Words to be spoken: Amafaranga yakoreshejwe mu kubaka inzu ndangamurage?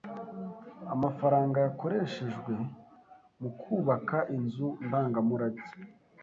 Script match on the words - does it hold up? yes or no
yes